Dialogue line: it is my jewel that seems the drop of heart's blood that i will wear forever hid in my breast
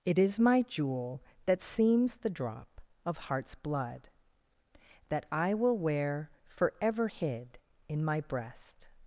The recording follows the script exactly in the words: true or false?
true